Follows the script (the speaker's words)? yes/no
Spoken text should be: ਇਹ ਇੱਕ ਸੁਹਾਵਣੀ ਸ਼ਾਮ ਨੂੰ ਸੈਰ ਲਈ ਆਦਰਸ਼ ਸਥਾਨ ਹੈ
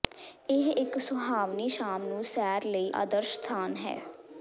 yes